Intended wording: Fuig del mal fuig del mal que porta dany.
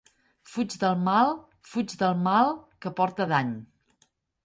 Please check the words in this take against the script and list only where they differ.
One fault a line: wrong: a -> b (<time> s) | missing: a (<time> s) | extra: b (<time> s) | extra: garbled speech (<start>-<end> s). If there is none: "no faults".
no faults